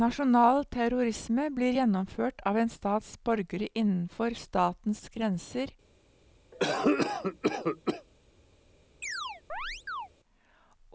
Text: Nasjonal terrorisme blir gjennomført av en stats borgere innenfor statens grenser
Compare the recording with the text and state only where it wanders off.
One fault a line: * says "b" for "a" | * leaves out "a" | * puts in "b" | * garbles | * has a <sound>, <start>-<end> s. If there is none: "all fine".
* has a cough, 6.5-8.1 s
* has a chirp, 9.0-10.1 s